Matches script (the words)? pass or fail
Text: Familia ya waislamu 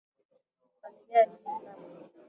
pass